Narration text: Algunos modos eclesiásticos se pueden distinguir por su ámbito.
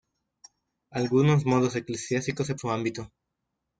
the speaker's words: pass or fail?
fail